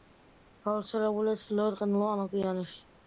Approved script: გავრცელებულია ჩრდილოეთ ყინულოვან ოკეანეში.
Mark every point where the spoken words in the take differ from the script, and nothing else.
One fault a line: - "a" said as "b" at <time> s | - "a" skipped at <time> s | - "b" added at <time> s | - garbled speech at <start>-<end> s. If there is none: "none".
none